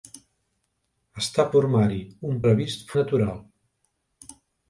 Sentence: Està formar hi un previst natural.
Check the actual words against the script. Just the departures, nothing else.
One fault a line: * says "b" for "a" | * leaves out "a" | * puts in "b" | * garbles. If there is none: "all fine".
all fine